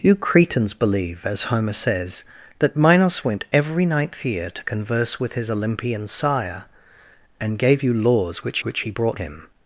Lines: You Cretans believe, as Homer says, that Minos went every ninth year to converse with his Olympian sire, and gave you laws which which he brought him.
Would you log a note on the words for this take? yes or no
no